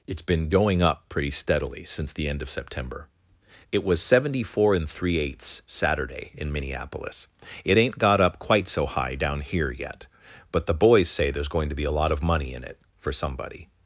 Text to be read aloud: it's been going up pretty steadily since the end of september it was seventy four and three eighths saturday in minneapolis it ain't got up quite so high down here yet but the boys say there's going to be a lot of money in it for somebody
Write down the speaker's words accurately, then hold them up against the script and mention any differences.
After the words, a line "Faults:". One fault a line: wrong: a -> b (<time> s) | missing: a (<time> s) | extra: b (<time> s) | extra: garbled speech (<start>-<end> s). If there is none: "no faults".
it's been going up pretty steadily since the end of september it was seventy four and three eighths saturday in minneapolis it ain't got up quite so high down here yet but the boys say there's going to be a lot of money in it for somebody
Faults:
no faults